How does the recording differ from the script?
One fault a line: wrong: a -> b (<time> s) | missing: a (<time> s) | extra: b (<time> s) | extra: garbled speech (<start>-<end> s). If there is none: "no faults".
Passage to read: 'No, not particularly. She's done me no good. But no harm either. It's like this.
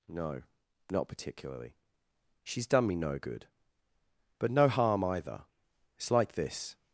no faults